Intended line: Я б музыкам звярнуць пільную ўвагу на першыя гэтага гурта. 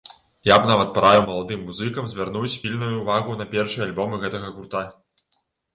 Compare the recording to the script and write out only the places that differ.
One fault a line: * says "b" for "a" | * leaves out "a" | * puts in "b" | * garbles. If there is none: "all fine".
* puts in "нават параіў маладым"
* puts in "альбомы"